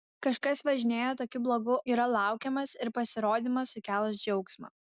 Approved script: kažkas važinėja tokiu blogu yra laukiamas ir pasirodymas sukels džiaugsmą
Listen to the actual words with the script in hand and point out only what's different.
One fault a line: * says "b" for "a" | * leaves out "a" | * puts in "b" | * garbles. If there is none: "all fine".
all fine